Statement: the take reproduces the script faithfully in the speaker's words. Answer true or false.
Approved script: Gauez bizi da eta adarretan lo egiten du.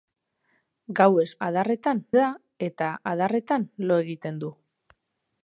false